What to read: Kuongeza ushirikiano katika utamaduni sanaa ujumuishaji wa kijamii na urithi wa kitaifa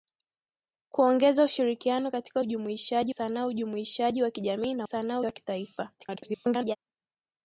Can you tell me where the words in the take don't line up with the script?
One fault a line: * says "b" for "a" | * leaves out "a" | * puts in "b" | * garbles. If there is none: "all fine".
* says "ujumuishaji" for "utamaduni"
* says "sanaa" for "urithi"
* garbles